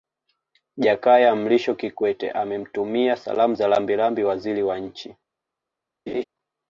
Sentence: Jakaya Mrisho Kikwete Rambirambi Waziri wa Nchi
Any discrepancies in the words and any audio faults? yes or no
yes